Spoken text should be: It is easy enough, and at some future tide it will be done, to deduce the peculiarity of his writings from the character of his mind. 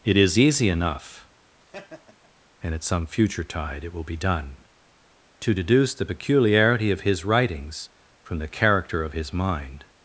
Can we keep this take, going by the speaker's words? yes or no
yes